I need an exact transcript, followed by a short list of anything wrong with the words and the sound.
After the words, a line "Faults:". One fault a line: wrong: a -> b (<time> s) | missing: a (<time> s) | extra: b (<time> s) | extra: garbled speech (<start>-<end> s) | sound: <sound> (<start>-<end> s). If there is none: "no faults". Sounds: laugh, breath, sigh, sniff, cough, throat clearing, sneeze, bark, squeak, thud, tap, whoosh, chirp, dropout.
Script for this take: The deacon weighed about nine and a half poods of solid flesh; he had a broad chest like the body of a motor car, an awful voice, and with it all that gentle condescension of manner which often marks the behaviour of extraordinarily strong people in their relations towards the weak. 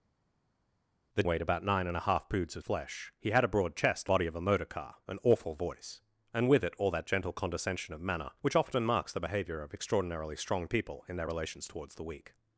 The weighed about nine and a half poods of flesh; he had a broad chest body of a motor car, an awful voice, and with it all that gentle condescension of manner which often marks the behaviour of extraordinarily strong people in their relations towards the weak.
Faults:
missing: deacon (1.2 s)
missing: solid (2.6 s)
missing: like the (4.1 s)